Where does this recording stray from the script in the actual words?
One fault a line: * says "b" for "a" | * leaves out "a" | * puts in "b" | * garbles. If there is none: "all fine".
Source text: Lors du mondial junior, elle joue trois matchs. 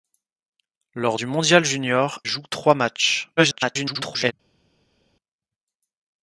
* leaves out "elle"
* garbles